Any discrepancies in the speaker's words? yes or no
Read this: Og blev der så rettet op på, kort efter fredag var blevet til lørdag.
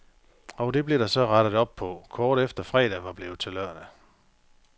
yes